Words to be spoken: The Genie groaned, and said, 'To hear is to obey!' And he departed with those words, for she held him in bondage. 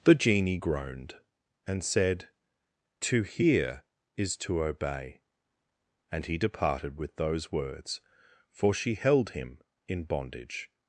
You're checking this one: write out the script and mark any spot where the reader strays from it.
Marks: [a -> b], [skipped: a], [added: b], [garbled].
The Genie groaned, and said, 'To hear is to obey!' And he departed with those words, for she held him in bondage.